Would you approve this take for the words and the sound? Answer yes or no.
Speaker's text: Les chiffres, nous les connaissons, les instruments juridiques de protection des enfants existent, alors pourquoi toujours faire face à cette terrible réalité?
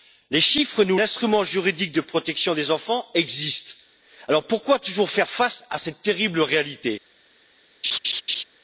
no